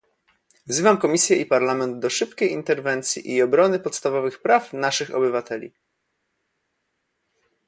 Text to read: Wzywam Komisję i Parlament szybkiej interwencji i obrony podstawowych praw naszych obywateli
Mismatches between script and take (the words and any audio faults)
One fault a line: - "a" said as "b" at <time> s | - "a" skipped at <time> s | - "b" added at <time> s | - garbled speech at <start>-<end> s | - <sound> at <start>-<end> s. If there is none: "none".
- "do" added at 2.0 s